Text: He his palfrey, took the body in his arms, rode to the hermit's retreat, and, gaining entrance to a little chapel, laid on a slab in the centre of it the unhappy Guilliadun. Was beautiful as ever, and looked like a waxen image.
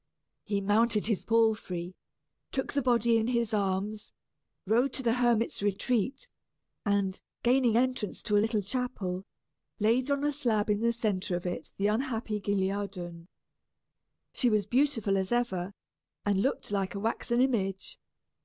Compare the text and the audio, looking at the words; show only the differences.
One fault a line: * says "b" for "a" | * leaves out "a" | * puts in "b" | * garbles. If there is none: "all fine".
* puts in "mounted"
* puts in "She"